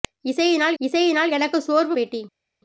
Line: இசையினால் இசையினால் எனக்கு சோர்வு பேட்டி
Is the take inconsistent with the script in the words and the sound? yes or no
no